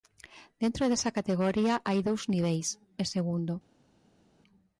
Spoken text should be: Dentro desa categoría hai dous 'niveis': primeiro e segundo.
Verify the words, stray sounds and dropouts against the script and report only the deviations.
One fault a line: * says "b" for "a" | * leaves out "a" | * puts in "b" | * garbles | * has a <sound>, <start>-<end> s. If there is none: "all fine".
* leaves out "primeiro"